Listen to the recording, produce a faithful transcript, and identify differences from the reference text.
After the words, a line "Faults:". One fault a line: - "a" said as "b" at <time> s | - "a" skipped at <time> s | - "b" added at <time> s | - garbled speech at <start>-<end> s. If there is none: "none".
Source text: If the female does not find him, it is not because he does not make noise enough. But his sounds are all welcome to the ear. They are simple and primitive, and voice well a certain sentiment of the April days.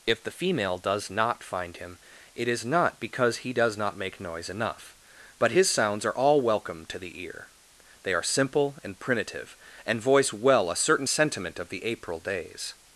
If the female does not find him, it is not because he does not make noise enough. But his sounds are all welcome to the ear. They are simple and primitive, and voice well a certain sentiment of the April days.
Faults:
none